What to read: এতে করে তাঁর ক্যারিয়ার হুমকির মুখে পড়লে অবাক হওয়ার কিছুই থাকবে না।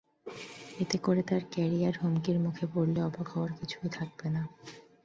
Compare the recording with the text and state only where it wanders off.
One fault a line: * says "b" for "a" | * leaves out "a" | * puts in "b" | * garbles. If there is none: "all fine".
all fine